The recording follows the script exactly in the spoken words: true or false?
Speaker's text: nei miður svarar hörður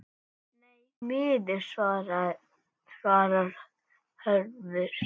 true